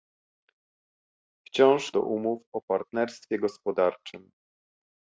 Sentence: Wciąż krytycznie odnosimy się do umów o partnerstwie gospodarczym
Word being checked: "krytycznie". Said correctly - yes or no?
no